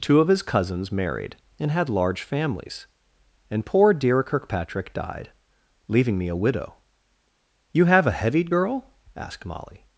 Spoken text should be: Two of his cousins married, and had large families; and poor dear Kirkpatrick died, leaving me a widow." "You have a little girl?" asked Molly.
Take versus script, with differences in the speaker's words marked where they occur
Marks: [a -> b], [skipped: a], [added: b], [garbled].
Two of his cousins married, and had large families; and poor dear Kirkpatrick died, leaving me a widow." "You have a [little -> heavied] girl?" asked Molly.